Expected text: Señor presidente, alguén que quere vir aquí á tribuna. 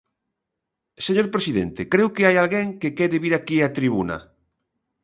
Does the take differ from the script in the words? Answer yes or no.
yes